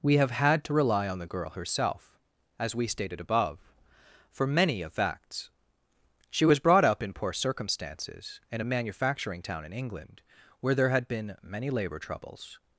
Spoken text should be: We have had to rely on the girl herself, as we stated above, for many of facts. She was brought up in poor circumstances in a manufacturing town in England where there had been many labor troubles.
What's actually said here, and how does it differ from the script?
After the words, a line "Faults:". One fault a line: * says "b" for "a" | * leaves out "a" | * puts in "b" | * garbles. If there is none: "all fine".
We have had to rely on the girl herself, as we stated above, for many of facts. She was brought up in poor circumstances in a manufacturing town in England where there had been many labor troubles.
Faults:
all fine